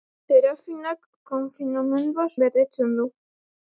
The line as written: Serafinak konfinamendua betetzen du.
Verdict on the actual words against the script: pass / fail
pass